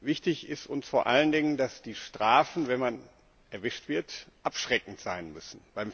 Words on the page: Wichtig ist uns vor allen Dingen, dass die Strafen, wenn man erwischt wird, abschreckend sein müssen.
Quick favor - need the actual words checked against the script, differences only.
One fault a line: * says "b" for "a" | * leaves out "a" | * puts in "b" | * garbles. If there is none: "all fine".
all fine